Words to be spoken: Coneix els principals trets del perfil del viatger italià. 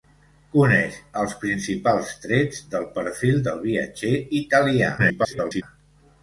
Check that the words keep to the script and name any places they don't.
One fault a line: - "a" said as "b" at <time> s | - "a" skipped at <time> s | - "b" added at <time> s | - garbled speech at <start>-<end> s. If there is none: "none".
- garbled speech at 5.0-5.6 s